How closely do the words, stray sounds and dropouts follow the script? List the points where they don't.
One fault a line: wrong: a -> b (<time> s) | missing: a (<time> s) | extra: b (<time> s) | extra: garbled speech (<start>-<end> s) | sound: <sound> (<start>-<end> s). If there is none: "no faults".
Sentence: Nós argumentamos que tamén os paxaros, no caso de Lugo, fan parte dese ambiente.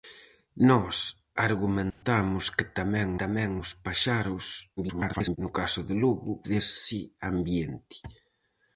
sound: dropout (1.9-2.0 s)
extra: tamén (3.2 s)
extra: garbled speech (4.8-5.4 s)
missing: fan parte (6.3 s)